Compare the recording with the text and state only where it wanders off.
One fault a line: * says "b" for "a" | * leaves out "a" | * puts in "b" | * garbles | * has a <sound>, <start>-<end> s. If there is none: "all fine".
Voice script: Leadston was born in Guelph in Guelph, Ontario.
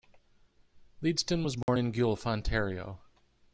* has a dropout, 1.6-1.7 s
* leaves out "in Guelph"